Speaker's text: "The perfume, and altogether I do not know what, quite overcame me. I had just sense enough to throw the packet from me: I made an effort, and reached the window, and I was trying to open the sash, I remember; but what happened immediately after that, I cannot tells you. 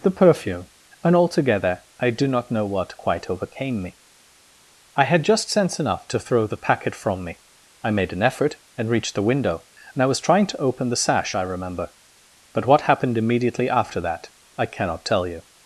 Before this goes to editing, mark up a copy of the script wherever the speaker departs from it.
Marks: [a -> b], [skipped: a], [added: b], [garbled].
"The perfume, and altogether I do not know what, quite overcame me. I had just sense enough to throw the packet from me: I made an effort, and reached the window, and I was trying to open the sash, I remember; but what happened immediately after that, I cannot [tells -> tell] you.